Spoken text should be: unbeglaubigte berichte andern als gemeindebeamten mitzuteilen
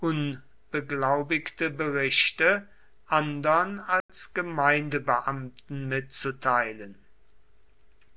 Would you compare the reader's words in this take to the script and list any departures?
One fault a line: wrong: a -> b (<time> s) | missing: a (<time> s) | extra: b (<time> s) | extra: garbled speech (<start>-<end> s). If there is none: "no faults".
no faults